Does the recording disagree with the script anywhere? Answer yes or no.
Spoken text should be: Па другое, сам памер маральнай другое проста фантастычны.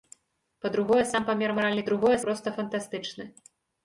no